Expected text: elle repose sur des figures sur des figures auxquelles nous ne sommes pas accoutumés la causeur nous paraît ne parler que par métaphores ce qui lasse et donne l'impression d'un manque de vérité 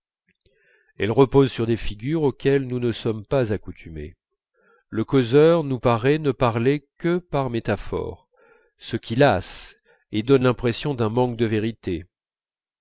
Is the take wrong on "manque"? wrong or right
right